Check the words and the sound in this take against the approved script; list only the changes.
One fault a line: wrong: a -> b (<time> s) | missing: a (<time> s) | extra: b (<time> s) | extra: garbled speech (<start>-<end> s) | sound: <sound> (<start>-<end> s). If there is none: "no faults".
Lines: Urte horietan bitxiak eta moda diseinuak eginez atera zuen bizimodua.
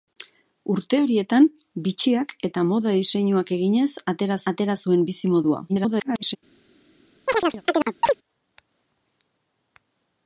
extra: atera (4.5 s)
extra: garbled speech (5.7-6.4 s)
sound: chirp (7.3-8.2 s)